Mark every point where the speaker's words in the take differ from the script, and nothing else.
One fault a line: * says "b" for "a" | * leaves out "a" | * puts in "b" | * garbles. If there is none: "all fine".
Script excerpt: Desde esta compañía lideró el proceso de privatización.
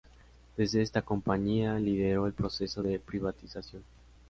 all fine